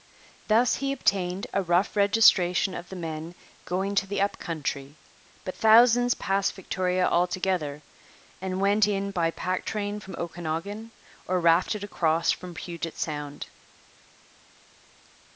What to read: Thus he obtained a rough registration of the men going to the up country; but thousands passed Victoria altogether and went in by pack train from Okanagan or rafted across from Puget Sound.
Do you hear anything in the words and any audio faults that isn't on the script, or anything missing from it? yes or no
no